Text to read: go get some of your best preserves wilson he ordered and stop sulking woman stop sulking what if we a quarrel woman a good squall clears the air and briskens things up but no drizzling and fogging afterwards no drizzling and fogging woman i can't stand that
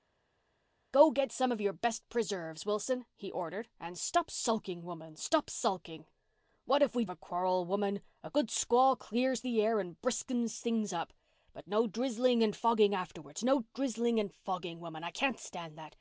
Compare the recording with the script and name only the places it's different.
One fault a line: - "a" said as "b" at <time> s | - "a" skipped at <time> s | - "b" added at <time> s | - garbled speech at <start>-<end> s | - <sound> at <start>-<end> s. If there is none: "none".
none